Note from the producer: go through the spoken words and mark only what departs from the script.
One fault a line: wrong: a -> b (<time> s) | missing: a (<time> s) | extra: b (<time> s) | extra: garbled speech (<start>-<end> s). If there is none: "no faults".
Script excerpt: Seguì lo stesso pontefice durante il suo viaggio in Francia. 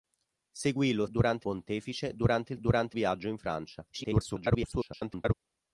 wrong: stesso -> durante (1.1 s)
wrong: suo -> durante (2.6 s)
extra: garbled speech (3.9-5.3 s)